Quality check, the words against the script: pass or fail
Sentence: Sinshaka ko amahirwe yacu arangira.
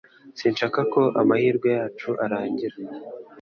pass